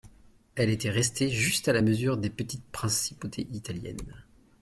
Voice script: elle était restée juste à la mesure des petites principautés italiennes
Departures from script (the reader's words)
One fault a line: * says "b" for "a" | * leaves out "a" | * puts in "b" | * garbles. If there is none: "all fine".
all fine